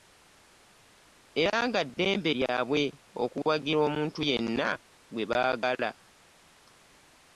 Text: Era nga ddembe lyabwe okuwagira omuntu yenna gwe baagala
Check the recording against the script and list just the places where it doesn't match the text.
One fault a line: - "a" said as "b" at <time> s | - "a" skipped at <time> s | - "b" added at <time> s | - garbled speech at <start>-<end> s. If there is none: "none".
none